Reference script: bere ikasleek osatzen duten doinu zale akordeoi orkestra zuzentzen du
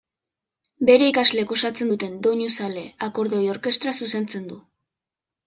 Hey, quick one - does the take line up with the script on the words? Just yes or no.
yes